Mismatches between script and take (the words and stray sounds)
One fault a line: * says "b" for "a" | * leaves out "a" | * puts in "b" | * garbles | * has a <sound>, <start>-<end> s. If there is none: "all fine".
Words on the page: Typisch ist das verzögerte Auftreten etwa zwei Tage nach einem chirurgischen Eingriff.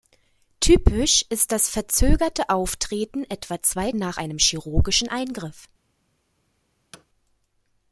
* leaves out "Tage"
* has a thud, 6.9-7.1 s